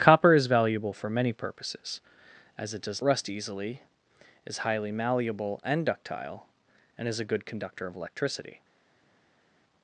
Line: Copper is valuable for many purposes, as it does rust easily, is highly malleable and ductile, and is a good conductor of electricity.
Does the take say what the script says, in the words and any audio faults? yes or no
yes